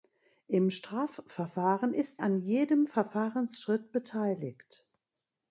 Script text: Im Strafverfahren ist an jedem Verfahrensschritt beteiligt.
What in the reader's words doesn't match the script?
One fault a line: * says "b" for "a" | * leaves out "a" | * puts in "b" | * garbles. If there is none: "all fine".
all fine